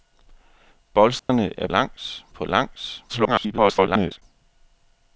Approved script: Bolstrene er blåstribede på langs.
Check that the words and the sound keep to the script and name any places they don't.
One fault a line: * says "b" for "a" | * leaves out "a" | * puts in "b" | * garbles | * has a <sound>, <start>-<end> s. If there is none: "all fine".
* has a dropout, 1.2-1.3 s
* says "langs" for "blåstribede"
* garbles